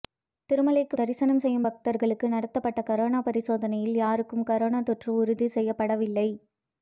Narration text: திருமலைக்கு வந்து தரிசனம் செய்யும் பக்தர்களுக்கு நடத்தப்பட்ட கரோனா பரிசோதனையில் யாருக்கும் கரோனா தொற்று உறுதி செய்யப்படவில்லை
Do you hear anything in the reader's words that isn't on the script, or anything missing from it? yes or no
yes